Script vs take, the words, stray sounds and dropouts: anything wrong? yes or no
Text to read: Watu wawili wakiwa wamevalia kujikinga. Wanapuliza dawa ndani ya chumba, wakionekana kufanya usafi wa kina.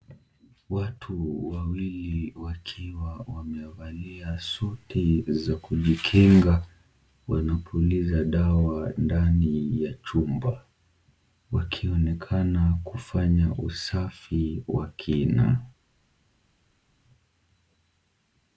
yes